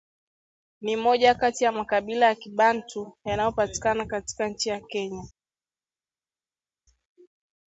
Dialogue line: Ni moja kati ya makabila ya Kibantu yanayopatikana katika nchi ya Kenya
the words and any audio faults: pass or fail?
pass